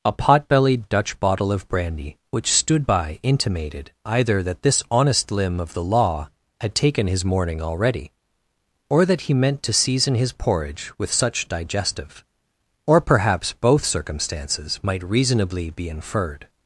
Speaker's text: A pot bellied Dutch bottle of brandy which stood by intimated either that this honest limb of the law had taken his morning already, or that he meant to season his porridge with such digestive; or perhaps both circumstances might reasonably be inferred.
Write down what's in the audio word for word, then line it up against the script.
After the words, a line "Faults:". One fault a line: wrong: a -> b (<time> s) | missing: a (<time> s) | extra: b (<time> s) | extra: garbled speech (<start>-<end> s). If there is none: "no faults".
A pot bellied Dutch bottle of brandy which stood by intimated either that this honest limb of the law had taken his morning already, or that he meant to season his porridge with such digestive; or perhaps both circumstances might reasonably be inferred.
Faults:
no faults